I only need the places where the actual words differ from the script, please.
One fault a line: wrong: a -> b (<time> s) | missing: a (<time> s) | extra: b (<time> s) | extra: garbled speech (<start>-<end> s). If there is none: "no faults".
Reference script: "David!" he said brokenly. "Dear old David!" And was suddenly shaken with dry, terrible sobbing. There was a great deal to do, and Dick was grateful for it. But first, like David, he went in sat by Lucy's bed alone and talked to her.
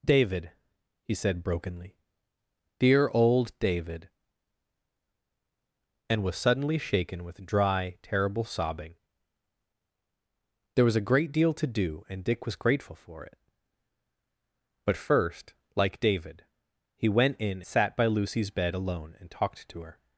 no faults